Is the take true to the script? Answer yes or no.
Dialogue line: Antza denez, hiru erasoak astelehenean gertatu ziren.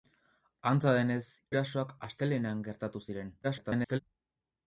no